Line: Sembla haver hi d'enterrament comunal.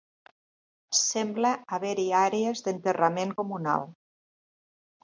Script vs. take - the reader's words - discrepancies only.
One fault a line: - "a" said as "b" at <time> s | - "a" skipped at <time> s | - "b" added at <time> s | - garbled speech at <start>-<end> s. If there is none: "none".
- "àrees" added at 2.2 s